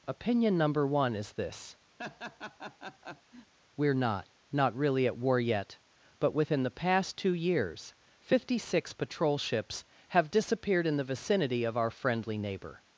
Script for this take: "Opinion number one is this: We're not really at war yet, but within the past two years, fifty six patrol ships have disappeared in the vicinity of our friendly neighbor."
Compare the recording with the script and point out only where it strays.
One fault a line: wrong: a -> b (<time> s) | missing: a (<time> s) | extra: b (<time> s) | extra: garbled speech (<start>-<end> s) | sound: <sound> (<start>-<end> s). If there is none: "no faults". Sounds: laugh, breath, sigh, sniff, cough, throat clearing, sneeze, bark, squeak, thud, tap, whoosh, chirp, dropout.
sound: laugh (2.0-3.5 s)
extra: not (4.5 s)